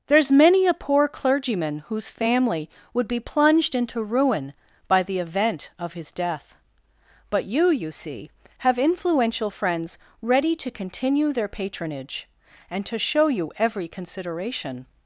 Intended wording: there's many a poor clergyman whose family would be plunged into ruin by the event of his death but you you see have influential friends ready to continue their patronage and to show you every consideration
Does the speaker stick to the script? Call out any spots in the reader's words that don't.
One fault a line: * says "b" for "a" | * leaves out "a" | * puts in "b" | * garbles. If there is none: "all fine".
all fine